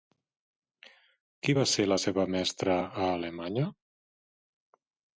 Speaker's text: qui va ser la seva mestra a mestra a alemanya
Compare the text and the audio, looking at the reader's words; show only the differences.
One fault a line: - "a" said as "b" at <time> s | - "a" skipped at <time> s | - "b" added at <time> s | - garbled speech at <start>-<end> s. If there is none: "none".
- "mestra a" skipped at 3.1 s